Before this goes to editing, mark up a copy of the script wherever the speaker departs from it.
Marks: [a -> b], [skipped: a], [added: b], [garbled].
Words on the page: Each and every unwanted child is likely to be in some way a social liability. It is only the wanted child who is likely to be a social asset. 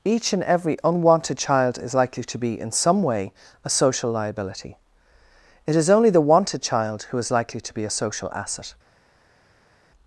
Each and every unwanted child is likely to be in some way a social liability. It is only the wanted child who is likely to be a social asset.